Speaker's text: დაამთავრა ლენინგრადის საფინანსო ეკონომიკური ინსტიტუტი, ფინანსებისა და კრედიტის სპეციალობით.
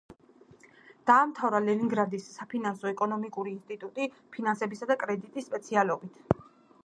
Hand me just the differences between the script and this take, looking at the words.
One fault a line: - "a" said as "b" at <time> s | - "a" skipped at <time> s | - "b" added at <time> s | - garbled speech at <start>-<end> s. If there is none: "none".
none